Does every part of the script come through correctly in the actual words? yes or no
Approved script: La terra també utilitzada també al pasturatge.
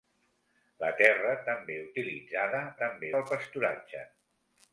yes